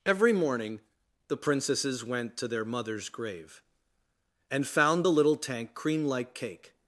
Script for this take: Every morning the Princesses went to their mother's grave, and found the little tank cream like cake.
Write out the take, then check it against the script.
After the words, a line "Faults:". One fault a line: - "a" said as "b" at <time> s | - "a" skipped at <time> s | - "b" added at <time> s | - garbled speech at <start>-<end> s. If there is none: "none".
Every morning the Princesses went to their mother's grave, and found the little tank cream like cake.
Faults:
none